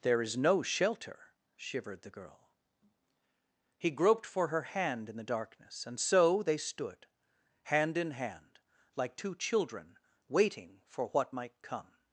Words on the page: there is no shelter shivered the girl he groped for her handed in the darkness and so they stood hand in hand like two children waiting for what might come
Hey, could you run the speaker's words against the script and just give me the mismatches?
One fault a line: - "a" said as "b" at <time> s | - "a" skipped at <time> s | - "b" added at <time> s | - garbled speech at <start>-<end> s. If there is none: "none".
- "handed" said as "hand" at 4.6 s